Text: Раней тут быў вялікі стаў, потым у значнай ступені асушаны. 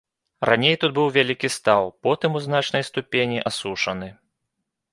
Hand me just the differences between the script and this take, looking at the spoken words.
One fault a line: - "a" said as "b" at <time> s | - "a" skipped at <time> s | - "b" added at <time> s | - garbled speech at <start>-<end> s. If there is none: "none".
none